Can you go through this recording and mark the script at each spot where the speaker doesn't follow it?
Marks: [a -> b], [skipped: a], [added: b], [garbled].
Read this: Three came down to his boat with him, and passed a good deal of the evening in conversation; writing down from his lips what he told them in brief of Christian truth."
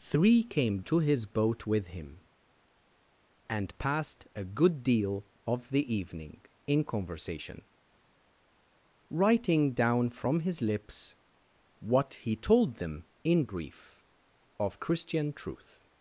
Three came [skipped: down] to his boat with him, and passed a good deal of the evening in conversation; writing down from his lips what he told them in brief of Christian truth."